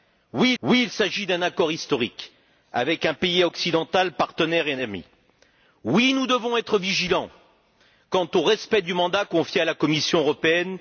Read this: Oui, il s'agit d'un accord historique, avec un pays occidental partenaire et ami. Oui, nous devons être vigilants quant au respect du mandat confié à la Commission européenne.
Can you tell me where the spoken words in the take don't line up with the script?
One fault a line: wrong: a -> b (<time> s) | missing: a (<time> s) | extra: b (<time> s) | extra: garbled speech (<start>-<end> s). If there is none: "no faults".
extra: oui (0.6 s)